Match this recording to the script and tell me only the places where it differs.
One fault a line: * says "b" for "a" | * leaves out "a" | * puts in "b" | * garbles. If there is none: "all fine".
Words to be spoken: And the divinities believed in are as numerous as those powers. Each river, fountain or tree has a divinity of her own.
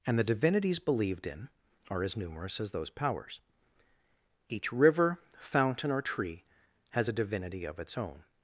* says "its" for "her"